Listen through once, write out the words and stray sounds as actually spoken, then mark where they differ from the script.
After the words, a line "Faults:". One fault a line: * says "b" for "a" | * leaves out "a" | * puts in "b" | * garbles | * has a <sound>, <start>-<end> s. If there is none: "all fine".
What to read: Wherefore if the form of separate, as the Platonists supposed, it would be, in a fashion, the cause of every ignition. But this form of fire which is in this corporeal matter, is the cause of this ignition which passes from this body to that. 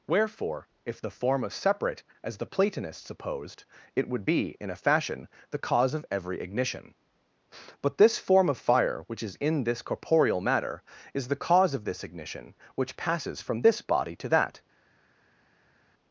Wherefore if the form of separate, as the Platonists supposed, it would be, in a fashion, the cause of every ignition. But this form of fire which is in this corporeal matter, is the cause of this ignition which passes from this body to that.
Faults:
all fine